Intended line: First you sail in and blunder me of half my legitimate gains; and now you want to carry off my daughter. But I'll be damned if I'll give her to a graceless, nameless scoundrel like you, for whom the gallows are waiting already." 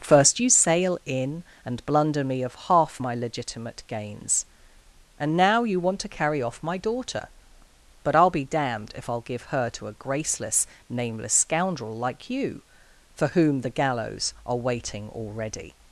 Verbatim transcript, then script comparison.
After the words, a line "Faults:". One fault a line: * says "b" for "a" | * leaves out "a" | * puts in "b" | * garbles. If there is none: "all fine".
First you sail in and blunder me of half my legitimate gains; and now you want to carry off my daughter. But I'll be damned if I'll give her to a graceless, nameless scoundrel like you, for whom the gallows are waiting already."
Faults:
all fine